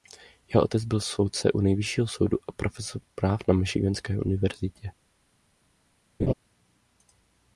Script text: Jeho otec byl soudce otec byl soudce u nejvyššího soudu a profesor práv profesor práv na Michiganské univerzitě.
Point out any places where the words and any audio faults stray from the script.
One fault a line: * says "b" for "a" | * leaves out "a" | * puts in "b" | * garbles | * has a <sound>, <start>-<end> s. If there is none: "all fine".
* leaves out "otec byl soudce"
* leaves out "profesor práv"
* has a laugh, 6.2-6.3 s